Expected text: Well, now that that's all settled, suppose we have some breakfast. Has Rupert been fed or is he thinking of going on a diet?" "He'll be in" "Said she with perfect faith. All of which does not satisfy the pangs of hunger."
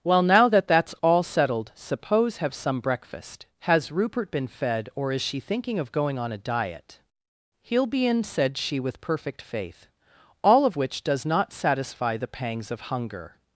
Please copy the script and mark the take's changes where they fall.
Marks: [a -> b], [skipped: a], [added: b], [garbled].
Well, now that that's all settled, suppose [skipped: we] have some breakfast. Has Rupert been fed or is [he -> she] thinking of going on a diet?" "He'll be in" "Said she with perfect faith. All of which does not satisfy the pangs of hunger."